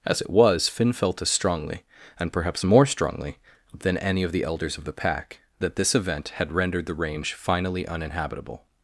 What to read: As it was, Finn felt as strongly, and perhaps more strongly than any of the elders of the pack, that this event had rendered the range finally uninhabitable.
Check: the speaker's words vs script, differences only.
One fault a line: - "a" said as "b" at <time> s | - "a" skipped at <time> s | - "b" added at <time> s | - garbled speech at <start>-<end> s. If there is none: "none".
none